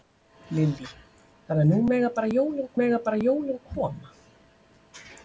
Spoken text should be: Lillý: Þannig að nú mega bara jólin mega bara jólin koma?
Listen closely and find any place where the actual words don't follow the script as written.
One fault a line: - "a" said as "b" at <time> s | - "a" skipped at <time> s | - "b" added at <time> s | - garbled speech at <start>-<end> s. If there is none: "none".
none